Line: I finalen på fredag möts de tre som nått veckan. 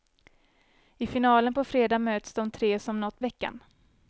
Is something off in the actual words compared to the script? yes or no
no